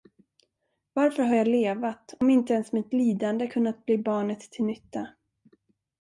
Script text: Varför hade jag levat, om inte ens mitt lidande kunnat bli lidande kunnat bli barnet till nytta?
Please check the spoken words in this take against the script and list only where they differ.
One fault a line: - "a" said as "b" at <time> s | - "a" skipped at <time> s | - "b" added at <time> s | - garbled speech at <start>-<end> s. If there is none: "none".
- "hade" said as "har" at 1.2 s
- "lidande kunnat bli" skipped at 4.0 s